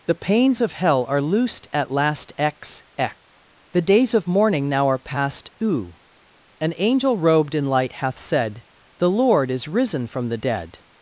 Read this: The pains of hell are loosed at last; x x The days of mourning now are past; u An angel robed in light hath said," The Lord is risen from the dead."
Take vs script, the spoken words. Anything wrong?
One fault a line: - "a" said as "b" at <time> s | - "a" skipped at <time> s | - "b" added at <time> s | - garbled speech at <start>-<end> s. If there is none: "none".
none